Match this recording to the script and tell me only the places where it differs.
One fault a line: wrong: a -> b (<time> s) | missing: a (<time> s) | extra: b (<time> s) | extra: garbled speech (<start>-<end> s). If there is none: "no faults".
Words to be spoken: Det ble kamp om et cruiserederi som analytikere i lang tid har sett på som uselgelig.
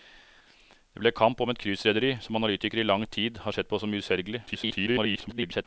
extra: garbled speech (4.5-5.7 s)